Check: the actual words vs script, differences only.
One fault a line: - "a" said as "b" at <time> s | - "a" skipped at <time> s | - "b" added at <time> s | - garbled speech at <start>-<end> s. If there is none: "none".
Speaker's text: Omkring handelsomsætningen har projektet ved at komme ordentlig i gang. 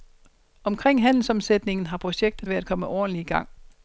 none